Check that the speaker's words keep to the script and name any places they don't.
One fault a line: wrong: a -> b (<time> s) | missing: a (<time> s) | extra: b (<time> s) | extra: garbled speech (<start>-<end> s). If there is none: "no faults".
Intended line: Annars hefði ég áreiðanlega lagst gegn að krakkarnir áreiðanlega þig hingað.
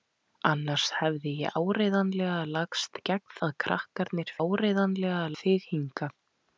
no faults